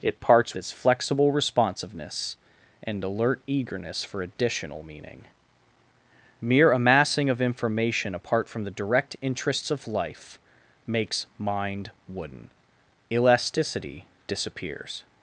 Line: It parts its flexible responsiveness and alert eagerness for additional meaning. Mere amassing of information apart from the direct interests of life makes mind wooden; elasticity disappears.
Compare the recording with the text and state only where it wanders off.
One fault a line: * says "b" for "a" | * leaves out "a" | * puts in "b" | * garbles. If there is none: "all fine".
all fine